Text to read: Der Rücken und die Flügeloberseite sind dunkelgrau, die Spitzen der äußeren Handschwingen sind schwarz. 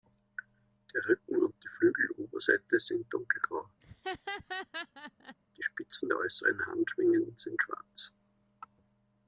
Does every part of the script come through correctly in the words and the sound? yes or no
no